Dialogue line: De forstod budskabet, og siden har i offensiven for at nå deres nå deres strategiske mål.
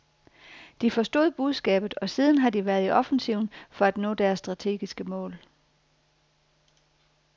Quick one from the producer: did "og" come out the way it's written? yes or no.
yes